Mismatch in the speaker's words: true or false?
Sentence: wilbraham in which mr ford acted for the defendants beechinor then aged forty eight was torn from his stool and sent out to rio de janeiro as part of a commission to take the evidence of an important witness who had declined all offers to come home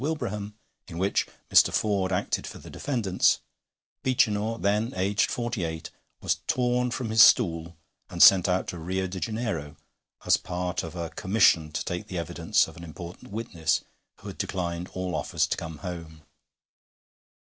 false